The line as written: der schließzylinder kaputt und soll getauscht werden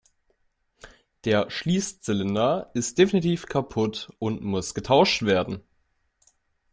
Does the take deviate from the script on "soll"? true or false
true